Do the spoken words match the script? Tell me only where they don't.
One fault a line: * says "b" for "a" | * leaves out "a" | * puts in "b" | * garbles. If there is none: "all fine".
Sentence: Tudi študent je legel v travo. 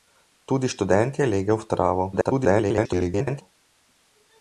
* garbles